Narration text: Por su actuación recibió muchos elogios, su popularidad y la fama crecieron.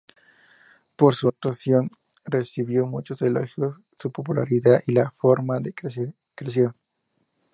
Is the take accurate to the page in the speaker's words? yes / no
yes